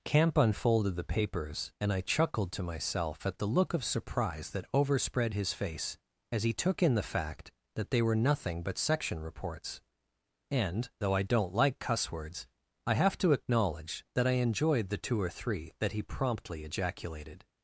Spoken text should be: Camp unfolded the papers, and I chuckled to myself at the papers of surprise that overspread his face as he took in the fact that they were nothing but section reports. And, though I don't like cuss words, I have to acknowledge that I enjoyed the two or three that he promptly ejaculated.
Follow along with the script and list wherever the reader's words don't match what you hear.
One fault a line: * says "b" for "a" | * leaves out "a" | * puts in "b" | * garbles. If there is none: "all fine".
* says "look" for "papers"